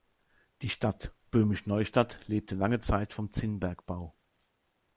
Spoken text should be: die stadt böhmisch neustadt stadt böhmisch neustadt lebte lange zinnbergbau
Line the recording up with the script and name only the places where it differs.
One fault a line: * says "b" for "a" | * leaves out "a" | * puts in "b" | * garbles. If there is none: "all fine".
* says "lebte lange zeit vom" for "stadt böhmisch neustadt lebte lange"